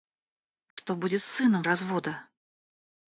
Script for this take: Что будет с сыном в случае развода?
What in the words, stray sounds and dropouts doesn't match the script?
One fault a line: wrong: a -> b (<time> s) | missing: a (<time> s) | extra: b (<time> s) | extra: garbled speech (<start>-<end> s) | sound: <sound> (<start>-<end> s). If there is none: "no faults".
sound: dropout (0.7-0.8 s)
missing: случае (1.7 s)